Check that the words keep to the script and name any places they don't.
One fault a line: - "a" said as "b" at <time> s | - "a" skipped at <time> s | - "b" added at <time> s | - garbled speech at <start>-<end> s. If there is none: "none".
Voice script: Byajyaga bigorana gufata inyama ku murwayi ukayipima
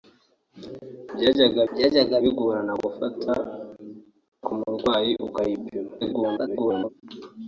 - "byajyaga" added at 1.7 s
- "inyama" skipped at 3.3 s
- garbled speech at 6.0-6.9 s